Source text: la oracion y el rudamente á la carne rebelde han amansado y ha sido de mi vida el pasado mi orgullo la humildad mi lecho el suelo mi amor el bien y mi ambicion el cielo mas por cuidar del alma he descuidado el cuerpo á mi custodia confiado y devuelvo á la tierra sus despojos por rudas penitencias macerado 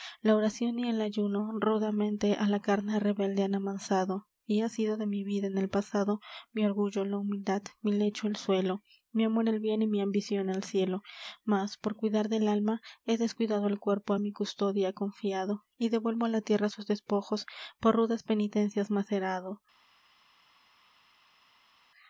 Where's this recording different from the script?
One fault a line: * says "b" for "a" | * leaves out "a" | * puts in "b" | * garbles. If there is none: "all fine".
* puts in "ayuno"
* puts in "en"